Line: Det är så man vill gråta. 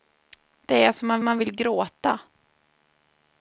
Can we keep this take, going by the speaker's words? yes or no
no